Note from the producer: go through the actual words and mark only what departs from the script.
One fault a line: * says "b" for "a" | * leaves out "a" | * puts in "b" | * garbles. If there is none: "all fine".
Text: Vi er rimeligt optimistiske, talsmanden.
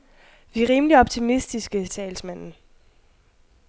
all fine